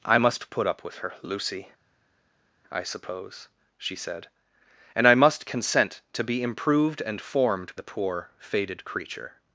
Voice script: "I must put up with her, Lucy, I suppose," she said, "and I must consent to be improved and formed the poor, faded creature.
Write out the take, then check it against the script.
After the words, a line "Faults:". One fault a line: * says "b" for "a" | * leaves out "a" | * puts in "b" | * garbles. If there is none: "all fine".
"I must put up with her, Lucy, I suppose," she said, "and I must consent to be improved and formed the poor, faded creature.
Faults:
all fine